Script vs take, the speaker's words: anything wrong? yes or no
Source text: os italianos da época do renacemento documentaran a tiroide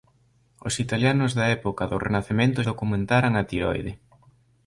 no